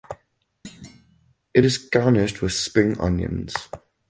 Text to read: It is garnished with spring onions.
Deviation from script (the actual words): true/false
false